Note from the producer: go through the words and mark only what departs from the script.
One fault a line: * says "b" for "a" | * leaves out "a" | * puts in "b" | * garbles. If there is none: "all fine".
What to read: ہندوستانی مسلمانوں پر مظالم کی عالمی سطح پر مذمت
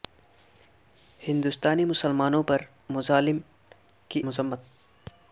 * leaves out "عالمی سطح پر"